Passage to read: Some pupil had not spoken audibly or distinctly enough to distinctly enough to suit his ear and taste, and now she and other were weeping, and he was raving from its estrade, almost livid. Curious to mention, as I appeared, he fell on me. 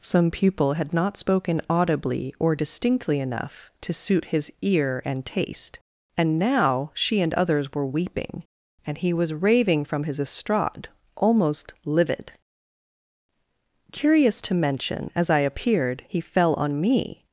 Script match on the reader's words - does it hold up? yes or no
no